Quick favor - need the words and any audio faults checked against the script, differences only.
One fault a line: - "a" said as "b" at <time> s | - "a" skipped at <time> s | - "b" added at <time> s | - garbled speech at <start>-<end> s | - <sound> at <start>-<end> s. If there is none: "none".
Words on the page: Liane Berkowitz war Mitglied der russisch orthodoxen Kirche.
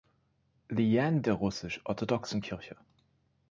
- "Berkowitz war Mitglied" skipped at 1.2 s